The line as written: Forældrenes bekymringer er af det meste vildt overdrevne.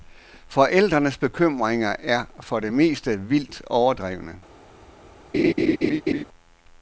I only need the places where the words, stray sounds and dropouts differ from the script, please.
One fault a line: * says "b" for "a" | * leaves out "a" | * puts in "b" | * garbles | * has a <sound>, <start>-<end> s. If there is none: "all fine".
* says "for" for "af"
* has a laugh, 5.3-6.2 s